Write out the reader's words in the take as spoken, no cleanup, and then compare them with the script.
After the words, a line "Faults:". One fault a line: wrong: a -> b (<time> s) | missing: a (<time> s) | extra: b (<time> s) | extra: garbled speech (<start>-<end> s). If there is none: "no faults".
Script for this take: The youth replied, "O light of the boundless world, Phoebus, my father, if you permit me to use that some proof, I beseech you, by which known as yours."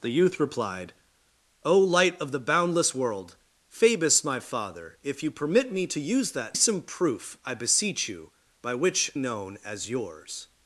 The youth replied, "O light of the boundless world, Phoebus, my father, if you permit me to use that some proof, I beseech you, by which known as yours."
Faults:
no faults